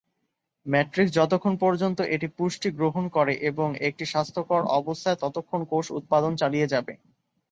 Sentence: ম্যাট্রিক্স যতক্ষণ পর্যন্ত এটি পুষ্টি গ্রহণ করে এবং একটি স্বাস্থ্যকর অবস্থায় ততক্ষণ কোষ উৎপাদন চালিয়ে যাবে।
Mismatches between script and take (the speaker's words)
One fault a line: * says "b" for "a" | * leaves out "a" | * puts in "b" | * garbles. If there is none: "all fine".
all fine